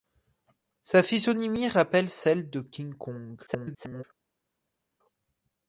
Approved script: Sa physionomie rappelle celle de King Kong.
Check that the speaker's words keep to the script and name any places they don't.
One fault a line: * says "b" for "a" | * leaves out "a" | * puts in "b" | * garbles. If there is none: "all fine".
* garbles